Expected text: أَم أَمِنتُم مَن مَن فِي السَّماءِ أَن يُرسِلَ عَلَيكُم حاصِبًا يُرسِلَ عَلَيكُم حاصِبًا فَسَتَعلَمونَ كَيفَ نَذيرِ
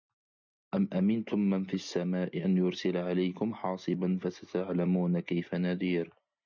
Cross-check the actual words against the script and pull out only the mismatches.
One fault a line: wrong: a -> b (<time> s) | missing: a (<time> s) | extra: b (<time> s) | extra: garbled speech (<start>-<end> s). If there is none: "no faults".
missing: مَن (1.6 s)
missing: يُرسِلَ عَلَيكُم حاصِبًا (4.2 s)